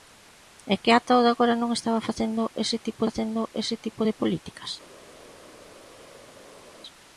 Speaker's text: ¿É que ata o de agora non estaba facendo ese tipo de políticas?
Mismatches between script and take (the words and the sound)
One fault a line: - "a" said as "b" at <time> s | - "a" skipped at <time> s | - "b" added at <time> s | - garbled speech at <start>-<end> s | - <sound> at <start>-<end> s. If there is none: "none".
- "facendo ese tipo" added at 3.1 s